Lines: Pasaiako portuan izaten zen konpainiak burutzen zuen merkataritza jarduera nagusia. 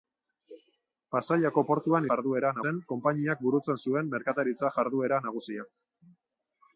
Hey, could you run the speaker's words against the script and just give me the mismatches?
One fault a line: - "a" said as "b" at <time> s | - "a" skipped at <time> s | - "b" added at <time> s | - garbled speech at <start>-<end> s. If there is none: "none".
- "izaten" said as "jarduera" at 2.1 s